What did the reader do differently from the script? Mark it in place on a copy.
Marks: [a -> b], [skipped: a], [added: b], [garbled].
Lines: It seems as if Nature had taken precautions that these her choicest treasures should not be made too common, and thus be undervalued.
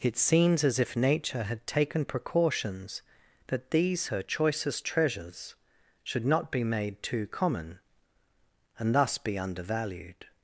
It seems as if Nature had taken precautions that these her choicest treasures should not be made too common, and thus be undervalued.